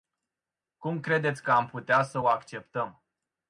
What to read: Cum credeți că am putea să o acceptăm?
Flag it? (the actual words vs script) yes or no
no